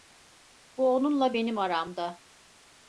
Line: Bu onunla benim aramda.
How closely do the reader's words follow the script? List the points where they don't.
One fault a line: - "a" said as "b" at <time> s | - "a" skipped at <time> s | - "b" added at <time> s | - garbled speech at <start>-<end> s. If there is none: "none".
none